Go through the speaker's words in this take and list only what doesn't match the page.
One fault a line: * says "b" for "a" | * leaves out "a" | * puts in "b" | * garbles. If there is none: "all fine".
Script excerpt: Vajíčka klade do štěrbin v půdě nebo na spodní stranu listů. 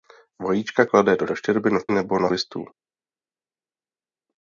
* puts in "do"
* leaves out "půdě"
* leaves out "spodní stranu"